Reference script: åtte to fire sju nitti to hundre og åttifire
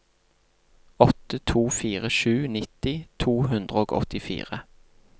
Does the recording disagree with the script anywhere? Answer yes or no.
no